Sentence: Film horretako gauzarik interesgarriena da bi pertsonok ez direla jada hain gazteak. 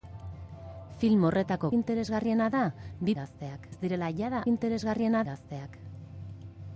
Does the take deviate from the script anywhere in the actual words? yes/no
yes